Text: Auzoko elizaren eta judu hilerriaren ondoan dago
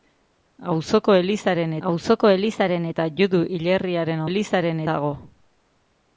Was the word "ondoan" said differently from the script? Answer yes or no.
yes